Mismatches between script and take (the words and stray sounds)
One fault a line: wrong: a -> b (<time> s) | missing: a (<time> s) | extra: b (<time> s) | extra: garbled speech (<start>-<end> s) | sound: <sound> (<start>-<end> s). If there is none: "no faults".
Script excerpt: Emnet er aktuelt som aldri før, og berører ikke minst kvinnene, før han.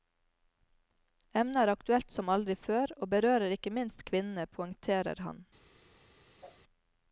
wrong: før -> poengterer (4.6 s)
sound: whoosh (6.4-6.6 s)